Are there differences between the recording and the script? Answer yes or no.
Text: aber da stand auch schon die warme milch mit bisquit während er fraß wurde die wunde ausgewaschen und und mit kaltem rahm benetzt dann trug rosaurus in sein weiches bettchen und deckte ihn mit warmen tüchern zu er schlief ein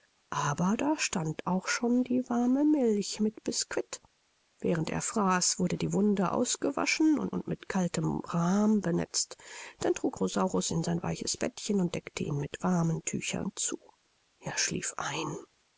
no